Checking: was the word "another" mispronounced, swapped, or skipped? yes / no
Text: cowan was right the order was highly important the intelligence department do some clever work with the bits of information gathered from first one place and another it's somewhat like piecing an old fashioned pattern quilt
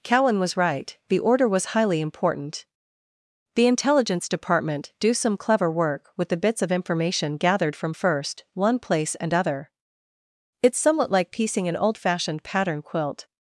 yes